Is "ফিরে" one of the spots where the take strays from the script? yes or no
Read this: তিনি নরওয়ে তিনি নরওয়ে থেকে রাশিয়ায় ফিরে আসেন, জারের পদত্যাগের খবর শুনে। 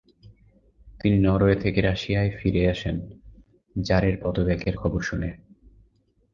no